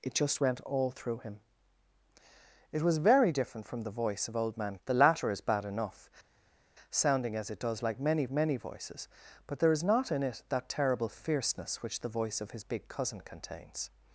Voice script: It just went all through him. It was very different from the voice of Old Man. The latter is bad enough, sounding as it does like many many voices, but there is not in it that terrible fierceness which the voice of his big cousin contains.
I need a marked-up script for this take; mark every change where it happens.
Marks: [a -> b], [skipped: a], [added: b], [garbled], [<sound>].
It just went all through him. It was very different from the voice of Old Man. The latter is bad enough, sounding as it does like many many voices, but there is not in it that terrible fierceness which the voice of his big cousin contains.